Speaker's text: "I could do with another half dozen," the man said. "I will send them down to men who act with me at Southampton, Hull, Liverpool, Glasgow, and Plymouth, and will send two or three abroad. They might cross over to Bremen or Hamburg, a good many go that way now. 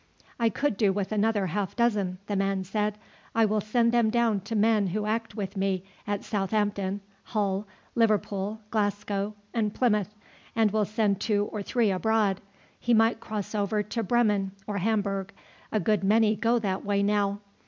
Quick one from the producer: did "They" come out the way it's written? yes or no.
no